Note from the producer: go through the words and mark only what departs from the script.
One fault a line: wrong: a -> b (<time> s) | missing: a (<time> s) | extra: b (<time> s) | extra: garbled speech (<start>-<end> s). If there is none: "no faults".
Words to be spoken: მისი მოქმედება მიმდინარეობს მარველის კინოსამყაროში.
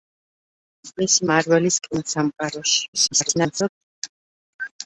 missing: მოქმედება მიმდინარეობს (1.3 s)
extra: garbled speech (2.9-3.7 s)